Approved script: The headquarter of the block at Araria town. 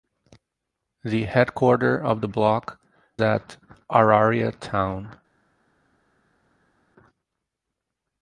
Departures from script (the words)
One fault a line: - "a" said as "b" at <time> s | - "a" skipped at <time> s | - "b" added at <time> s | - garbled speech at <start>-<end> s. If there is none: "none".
none